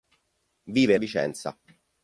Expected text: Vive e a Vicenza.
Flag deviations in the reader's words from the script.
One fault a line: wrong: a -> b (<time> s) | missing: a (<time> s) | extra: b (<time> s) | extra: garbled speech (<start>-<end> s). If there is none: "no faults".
no faults